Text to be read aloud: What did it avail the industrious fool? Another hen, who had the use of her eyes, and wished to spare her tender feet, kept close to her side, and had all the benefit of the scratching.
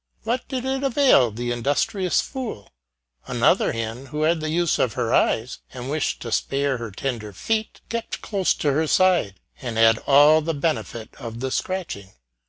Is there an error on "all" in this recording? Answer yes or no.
no